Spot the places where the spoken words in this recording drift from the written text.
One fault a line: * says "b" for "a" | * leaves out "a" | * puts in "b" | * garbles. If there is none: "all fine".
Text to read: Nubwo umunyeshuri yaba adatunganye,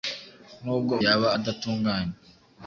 * leaves out "umunyeshuri"